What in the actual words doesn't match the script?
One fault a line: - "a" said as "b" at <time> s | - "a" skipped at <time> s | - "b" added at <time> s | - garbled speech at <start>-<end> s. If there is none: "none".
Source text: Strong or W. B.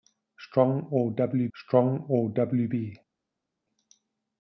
- "strong or W" added at 1.5 s